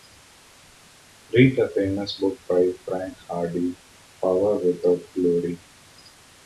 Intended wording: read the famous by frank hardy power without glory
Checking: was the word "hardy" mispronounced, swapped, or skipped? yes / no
no